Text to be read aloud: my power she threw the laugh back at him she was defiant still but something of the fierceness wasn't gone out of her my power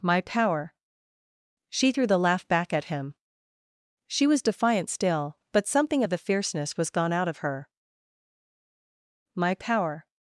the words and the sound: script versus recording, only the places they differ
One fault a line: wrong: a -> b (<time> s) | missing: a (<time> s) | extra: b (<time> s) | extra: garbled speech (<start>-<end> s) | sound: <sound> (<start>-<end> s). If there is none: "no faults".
wrong: wasn't -> was (6.8 s)